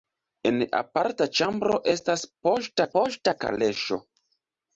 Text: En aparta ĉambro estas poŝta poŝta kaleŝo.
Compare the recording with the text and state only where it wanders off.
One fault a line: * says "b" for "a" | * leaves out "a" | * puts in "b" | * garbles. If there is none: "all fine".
all fine